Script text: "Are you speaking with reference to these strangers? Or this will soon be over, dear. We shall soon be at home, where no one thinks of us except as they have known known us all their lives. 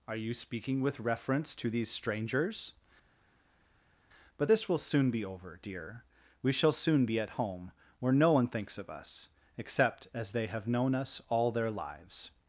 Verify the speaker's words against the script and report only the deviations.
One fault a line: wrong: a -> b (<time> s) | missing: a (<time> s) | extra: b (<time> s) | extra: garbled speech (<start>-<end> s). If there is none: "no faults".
wrong: Or -> But (4.4 s)
missing: known (11.0 s)